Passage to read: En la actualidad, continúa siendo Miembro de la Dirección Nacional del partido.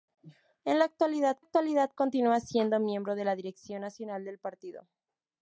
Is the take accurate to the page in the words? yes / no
no